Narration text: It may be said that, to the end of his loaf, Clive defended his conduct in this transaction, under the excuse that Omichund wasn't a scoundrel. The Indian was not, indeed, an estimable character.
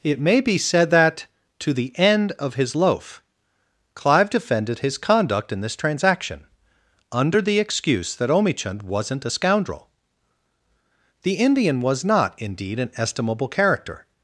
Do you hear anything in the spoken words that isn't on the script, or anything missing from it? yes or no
no